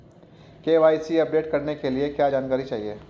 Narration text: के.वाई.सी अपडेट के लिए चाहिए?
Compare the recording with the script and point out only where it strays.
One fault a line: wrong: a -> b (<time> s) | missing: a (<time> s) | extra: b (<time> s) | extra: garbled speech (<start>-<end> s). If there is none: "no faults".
extra: करने (1.5 s)
extra: क्या जानकारी (2.1 s)